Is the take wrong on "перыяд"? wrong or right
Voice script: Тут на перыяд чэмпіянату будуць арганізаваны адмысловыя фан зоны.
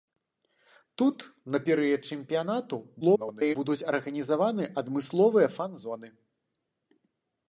right